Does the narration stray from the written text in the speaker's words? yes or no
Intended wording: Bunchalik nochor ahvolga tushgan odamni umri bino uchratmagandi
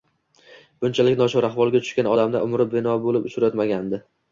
yes